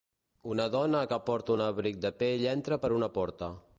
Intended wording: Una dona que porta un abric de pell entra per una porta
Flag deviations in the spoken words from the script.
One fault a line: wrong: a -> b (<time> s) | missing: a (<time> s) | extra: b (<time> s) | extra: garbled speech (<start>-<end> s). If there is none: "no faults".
no faults